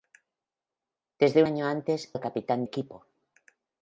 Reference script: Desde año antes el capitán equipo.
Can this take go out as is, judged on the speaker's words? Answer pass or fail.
pass